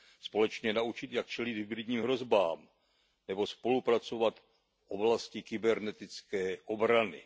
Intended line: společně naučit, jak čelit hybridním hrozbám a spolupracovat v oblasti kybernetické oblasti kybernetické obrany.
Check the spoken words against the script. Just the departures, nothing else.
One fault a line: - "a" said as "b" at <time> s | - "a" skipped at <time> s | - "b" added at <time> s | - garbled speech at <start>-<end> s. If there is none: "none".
- "a" said as "nebo" at 3.3 s
- "oblasti kybernetické" skipped at 6.6 s